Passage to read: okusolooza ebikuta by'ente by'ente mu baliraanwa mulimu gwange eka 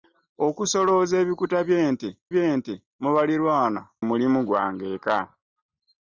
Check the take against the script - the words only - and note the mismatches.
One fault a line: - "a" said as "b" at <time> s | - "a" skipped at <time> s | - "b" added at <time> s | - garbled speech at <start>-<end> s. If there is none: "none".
none